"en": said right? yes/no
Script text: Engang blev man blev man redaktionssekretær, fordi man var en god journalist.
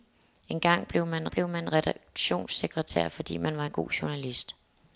yes